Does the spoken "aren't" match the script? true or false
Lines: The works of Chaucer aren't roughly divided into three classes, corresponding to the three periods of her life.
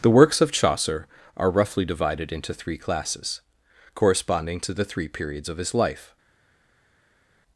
false